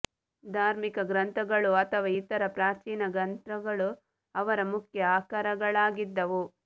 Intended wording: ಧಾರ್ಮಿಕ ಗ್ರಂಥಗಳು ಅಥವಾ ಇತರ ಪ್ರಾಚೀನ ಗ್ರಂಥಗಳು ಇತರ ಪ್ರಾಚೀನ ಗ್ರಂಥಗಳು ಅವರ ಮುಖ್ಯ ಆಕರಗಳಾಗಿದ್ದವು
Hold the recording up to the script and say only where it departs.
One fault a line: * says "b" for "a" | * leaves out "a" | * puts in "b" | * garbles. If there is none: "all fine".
* leaves out "ಇತರ ಪ್ರಾಚೀನ ಗ್ರಂಥಗಳು"